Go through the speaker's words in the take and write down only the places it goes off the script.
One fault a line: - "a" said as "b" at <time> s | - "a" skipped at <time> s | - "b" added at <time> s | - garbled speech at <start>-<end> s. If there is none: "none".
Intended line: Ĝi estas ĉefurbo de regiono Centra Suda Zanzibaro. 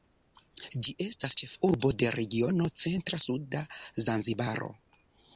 none